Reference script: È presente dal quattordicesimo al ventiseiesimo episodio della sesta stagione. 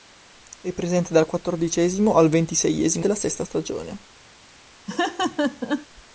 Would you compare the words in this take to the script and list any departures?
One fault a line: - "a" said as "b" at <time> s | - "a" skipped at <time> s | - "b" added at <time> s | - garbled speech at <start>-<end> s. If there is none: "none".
- "episodio" skipped at 3.0 s